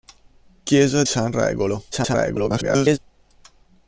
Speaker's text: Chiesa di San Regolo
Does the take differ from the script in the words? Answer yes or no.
yes